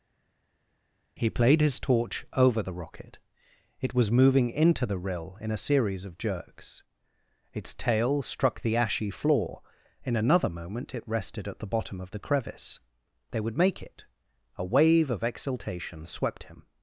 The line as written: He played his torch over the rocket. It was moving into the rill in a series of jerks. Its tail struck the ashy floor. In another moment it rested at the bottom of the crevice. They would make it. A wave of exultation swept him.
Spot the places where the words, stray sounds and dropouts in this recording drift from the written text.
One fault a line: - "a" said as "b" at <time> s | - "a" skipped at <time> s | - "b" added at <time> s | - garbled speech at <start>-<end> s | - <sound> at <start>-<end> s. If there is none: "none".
none